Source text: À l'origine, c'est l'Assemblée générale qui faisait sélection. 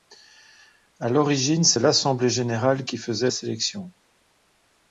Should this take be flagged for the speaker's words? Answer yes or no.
no